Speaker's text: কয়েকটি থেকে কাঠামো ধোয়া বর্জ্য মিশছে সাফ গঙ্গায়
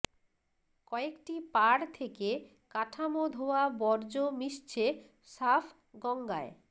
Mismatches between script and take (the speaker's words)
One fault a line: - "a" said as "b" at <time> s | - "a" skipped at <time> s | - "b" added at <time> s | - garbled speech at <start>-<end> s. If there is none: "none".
- "পাড়" added at 1.5 s